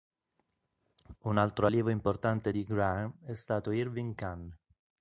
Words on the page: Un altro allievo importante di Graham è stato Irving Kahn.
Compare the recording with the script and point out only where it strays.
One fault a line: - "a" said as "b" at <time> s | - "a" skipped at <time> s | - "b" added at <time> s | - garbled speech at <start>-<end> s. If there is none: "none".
none